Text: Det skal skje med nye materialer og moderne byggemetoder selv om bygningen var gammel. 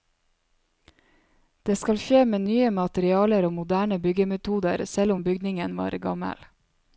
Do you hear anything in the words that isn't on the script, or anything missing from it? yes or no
no